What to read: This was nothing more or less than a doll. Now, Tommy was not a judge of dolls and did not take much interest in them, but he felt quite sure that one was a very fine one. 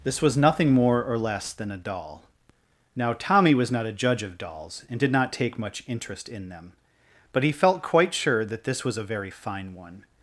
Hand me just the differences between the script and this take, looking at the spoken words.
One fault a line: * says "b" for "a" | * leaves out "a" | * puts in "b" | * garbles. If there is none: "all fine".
* says "this" for "one"